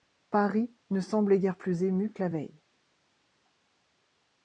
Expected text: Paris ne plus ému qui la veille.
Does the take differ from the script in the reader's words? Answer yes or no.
yes